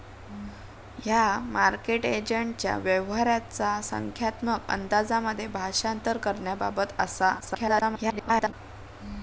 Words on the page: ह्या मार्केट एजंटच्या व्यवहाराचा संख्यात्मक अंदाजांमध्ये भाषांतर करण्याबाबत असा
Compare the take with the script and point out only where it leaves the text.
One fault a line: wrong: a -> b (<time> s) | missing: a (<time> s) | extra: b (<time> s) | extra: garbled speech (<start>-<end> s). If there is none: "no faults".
extra: garbled speech (7.4-8.5 s)